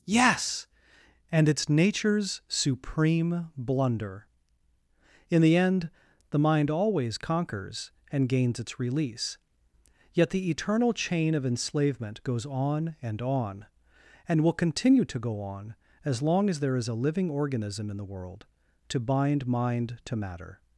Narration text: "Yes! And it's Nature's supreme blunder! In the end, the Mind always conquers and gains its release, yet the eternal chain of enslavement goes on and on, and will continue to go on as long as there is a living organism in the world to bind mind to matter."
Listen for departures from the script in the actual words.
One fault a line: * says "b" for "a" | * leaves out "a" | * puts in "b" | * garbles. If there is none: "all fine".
all fine